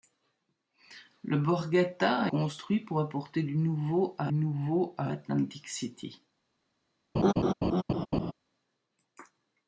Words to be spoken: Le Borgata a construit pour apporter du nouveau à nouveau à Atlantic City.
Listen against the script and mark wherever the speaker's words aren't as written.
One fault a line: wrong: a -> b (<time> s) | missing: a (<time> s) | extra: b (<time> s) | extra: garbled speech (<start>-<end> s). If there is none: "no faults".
no faults